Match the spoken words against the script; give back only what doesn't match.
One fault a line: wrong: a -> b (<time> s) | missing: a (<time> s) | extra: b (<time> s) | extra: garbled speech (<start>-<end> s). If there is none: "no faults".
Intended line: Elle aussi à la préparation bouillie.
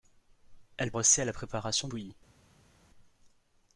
no faults